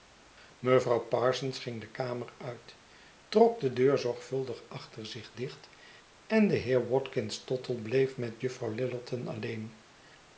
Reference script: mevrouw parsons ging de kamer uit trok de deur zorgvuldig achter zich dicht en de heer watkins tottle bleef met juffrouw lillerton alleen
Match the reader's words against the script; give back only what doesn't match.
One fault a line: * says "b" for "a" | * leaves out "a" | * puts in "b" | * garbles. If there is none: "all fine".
all fine